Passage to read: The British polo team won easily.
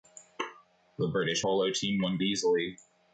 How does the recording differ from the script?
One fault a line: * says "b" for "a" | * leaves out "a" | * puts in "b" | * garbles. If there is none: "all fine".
all fine